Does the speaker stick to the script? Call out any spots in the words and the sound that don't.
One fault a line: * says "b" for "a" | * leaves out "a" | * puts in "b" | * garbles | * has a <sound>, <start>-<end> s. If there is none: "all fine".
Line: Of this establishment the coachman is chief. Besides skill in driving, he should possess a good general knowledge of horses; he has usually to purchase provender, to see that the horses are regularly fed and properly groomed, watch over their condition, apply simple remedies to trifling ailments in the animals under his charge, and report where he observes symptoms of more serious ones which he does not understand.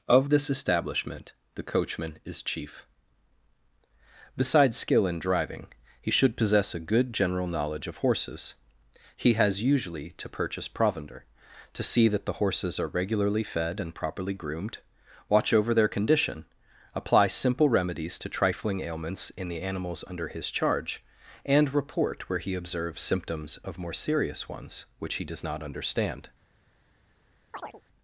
* has a chirp, 27.5-27.8 s